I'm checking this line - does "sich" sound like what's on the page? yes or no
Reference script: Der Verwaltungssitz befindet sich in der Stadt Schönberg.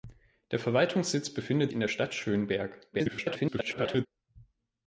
no